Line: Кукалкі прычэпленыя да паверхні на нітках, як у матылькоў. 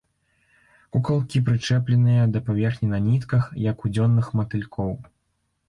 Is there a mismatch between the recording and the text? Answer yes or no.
yes